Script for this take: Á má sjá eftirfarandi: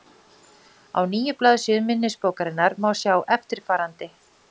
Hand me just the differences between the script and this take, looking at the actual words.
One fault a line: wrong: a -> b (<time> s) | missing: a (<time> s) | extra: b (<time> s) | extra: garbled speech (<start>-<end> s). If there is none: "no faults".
extra: níu blaðsíðum minnisbókarinnar (1.1 s)